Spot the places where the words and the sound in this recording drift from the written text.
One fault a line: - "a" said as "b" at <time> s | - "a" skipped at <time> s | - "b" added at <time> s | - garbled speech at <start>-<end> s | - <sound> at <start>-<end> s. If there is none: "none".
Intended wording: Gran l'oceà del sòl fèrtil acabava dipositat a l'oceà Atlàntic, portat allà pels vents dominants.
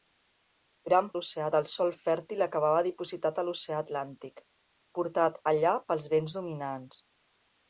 none